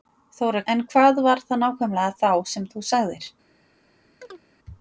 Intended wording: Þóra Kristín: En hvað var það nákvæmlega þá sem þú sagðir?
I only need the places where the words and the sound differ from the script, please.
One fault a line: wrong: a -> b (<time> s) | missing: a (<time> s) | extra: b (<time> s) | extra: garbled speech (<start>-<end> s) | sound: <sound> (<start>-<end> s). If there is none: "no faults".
missing: Kristín (0.6 s)
sound: chirp (4.2-4.4 s)